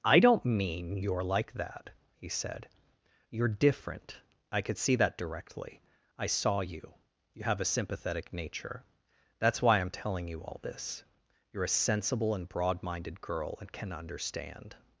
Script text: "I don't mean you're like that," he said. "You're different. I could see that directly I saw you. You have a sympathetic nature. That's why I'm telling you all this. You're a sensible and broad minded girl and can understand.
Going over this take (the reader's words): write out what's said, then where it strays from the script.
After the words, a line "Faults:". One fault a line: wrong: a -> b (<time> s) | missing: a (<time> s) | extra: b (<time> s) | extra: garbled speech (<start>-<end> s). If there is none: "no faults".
"I don't mean you're like that," he said. "You're different. I could see that directly I saw you. You have a sympathetic nature. That's why I'm telling you all this. You're a sensible and broad minded girl and can understand.
Faults:
no faults